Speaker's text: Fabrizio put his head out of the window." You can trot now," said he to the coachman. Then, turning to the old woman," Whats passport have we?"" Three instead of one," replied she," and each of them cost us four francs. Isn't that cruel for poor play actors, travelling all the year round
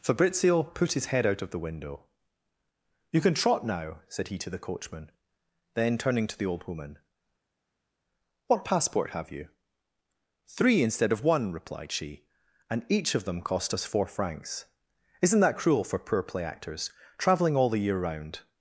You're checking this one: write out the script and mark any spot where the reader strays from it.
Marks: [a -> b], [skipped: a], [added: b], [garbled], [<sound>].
Fabrizio put his head out of the window." You can trot now," said he to the coachman. Then, turning to the old woman," [Whats -> What] passport have [we?"" -> you] Three instead of one," replied she," and each of them cost us four francs. Isn't that cruel for poor play actors, travelling all the year round